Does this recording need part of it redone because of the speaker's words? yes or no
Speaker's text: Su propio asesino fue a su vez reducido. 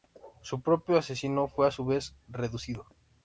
no